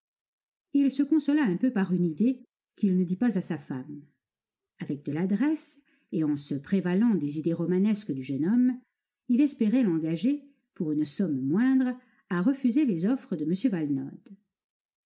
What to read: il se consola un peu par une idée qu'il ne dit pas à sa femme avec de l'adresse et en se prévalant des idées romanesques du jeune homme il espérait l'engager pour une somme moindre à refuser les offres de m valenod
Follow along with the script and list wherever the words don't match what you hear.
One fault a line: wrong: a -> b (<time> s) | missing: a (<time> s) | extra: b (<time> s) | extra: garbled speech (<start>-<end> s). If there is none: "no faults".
no faults